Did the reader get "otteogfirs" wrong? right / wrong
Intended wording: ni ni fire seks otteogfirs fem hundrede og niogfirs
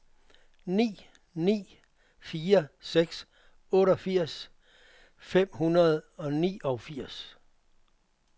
right